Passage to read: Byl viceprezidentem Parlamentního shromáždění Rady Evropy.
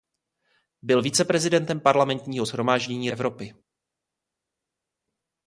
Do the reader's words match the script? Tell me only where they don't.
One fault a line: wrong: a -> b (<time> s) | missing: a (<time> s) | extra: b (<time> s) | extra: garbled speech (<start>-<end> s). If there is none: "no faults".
missing: Rady (3.1 s)